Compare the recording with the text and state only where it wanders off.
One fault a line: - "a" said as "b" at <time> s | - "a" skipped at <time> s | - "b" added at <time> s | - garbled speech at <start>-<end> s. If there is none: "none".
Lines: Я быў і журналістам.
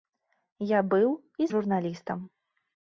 none